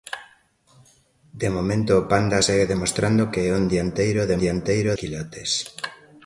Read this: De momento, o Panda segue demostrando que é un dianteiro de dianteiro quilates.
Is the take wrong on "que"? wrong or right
right